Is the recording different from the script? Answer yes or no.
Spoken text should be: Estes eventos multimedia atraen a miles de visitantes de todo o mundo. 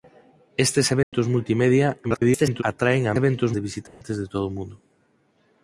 yes